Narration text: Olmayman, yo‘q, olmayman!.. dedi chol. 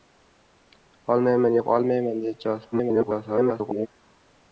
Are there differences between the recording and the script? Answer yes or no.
yes